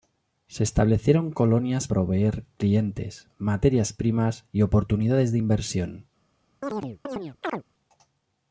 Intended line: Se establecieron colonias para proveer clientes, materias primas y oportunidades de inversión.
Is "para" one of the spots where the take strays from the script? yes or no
yes